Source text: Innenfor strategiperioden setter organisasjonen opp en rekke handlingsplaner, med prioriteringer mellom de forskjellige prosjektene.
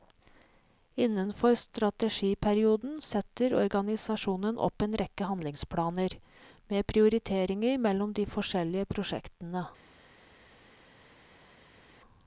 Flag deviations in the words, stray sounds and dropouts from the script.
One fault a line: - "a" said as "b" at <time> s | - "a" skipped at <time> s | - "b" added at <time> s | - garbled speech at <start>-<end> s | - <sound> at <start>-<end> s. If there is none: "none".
none